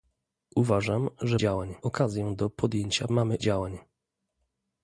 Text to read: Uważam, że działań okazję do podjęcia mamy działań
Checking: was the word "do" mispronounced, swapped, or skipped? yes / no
no